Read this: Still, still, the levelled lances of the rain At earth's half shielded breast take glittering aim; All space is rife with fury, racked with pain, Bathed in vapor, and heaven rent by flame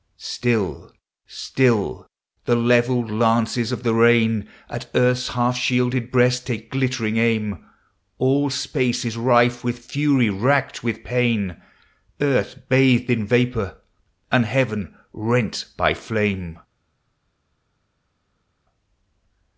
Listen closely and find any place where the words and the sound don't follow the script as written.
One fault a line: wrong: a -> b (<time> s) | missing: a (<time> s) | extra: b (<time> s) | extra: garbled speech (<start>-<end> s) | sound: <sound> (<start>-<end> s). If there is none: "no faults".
extra: Earth (12.2 s)